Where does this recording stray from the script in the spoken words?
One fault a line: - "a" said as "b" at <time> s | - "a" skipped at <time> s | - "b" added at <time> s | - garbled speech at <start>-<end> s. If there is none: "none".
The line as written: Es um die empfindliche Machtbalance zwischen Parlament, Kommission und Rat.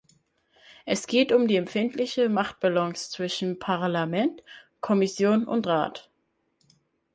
- "geht" added at 1.1 s